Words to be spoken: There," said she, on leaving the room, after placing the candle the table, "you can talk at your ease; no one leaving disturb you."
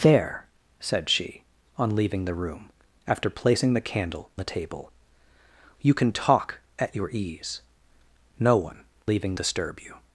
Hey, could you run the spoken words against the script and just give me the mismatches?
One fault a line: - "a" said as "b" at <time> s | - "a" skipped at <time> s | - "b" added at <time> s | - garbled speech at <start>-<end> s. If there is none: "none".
none